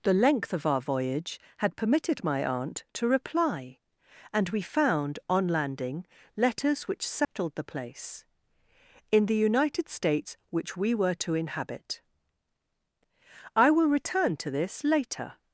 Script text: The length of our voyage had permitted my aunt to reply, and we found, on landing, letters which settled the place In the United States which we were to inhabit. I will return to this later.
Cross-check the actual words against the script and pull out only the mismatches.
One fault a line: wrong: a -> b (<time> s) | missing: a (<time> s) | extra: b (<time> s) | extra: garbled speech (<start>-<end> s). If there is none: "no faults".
no faults